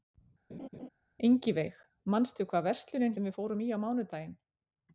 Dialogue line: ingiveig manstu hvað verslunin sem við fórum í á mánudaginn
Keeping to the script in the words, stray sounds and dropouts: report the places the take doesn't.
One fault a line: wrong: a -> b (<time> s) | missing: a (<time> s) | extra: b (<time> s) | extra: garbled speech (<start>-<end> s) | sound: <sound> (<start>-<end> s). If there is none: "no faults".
sound: laugh (0.5-0.9 s)